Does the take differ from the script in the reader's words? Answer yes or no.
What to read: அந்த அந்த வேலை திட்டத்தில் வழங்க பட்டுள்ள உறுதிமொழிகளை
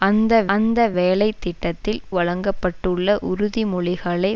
no